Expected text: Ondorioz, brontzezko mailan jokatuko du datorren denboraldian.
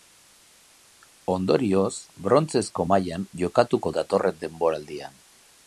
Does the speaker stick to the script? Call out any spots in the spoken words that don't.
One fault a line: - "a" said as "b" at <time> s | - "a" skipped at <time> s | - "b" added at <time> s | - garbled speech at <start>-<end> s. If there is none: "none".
- "du" skipped at 3.9 s